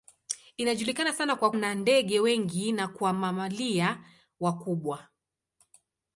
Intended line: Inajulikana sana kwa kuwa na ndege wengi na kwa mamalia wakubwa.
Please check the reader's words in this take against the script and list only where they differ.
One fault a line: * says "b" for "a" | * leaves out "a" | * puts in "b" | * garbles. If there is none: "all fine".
* leaves out "kuwa"